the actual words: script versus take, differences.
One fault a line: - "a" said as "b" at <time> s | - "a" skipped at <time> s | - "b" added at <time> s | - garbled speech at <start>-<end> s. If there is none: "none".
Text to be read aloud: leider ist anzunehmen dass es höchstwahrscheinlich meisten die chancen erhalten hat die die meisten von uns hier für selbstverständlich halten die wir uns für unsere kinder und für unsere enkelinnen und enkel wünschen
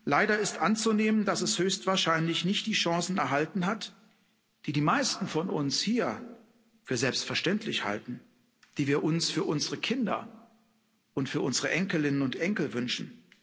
- "meisten" said as "nicht" at 2.5 s